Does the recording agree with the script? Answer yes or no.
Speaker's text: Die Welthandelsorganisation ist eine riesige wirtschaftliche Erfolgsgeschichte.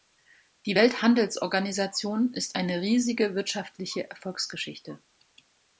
yes